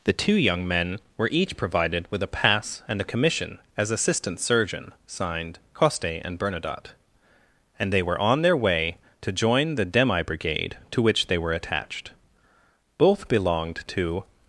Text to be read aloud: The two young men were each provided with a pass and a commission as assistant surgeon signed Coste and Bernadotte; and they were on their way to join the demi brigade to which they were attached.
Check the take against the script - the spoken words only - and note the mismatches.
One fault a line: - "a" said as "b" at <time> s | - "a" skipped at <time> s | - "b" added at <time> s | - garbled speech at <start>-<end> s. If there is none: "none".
- "Both belonged to" added at 13.0 s